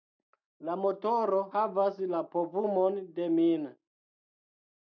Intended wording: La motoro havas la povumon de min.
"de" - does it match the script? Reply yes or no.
yes